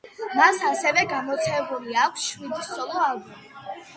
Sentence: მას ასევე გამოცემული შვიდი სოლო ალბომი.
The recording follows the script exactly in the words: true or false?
false